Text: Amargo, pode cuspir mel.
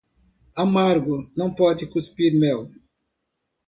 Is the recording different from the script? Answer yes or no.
yes